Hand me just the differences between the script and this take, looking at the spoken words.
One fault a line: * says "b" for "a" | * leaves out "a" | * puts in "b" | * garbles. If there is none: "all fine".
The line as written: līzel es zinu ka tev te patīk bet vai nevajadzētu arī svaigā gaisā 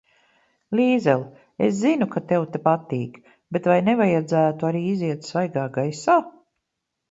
* puts in "iziet"